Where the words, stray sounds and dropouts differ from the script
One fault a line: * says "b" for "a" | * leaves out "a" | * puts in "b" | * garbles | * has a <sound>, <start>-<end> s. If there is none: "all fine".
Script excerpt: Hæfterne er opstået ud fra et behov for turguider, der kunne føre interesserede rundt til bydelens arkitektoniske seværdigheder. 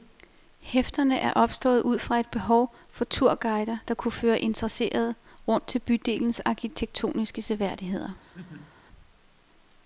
* has a laugh, 8.2-8.8 s